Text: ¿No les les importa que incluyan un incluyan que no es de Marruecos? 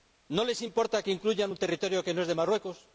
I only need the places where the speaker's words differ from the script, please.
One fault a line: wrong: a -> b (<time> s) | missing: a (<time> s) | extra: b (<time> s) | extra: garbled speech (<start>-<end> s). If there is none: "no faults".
missing: les (0.6 s)
wrong: incluyan -> territorio (1.6 s)